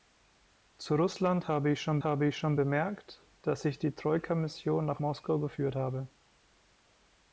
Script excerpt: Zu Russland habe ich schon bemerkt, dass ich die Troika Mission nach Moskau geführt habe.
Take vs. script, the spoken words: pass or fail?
fail